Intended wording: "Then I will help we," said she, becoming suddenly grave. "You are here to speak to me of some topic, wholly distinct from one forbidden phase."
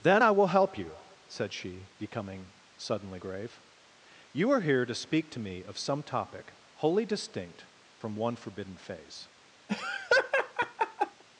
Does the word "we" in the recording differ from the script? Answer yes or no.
yes